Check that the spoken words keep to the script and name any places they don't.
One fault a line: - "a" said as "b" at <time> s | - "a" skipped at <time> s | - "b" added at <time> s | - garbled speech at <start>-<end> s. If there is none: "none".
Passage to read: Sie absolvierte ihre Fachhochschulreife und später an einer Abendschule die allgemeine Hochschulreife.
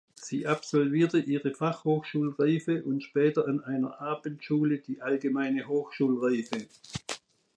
none